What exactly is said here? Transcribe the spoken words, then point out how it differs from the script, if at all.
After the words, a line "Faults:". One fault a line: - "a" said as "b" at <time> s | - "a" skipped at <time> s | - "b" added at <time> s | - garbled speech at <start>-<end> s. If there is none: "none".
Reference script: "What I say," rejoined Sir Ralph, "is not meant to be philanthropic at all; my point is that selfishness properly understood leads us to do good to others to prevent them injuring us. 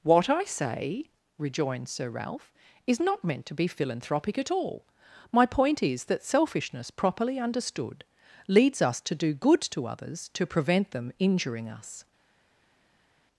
"What I say," rejoined Sir Ralph, "is not meant to be philanthropic at all; my point is that selfishness properly understood leads us to do good to others to prevent them injuring us.
Faults:
none